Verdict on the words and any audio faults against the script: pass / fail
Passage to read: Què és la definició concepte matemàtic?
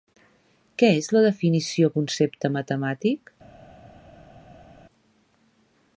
pass